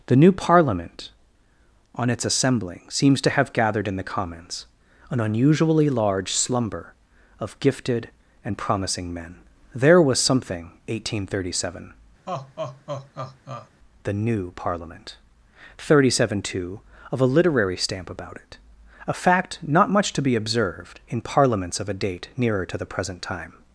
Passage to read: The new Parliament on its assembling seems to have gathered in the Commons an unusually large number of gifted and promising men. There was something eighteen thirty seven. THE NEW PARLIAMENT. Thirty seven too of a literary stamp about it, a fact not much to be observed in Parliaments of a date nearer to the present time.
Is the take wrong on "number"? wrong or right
wrong